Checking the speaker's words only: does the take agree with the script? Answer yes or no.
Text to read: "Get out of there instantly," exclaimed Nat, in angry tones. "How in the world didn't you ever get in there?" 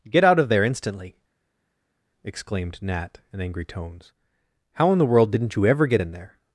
yes